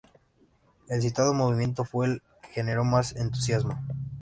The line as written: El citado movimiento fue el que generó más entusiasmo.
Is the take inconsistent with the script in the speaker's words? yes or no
no